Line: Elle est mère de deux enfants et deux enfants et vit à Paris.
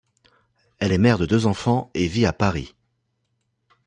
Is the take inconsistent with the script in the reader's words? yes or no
yes